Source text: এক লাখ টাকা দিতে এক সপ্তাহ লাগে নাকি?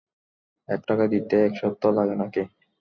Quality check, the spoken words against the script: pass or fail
fail